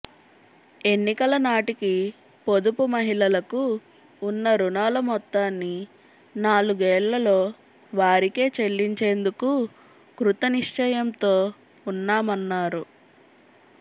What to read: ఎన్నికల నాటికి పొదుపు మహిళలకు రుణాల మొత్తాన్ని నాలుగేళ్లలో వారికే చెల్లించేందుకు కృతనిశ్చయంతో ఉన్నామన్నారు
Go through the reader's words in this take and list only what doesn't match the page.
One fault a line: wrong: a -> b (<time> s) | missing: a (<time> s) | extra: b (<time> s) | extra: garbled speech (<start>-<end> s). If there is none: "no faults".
extra: ఉన్న (4.2 s)